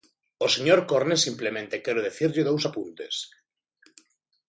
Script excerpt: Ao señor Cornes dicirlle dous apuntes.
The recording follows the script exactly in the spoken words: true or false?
false